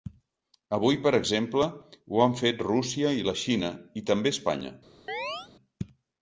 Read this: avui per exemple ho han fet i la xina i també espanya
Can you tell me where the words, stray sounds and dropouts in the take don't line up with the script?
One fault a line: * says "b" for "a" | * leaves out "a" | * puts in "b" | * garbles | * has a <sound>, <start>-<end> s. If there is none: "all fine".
* puts in "rússia"
* has a chirp, 5.1-5.5 s